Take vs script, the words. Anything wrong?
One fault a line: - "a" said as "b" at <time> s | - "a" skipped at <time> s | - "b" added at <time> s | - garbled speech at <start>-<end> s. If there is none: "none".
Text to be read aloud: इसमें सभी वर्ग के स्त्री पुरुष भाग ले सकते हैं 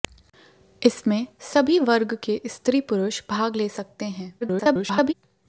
- garbled speech at 4.4-5.1 s